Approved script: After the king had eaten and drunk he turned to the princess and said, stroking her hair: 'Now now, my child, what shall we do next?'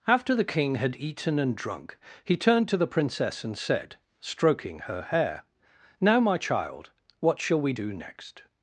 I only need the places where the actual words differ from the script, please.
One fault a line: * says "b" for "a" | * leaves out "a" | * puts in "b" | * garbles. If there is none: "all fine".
* leaves out "now"